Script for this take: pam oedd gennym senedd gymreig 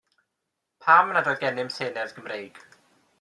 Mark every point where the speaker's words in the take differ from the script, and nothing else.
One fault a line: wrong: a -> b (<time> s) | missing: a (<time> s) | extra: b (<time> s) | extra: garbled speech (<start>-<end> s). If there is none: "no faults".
extra: nad (1.2 s)